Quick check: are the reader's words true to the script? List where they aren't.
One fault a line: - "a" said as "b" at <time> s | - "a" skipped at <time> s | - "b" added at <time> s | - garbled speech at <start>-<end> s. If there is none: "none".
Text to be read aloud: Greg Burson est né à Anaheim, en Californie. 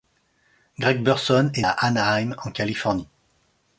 - "né" skipped at 1.7 s